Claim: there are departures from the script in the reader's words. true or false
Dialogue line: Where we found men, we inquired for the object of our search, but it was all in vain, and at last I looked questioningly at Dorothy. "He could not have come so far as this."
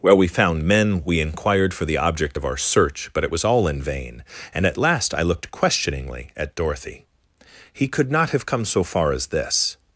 false